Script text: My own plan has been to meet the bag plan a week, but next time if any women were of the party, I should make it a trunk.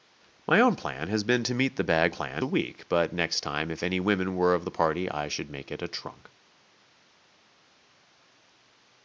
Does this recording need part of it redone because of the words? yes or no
no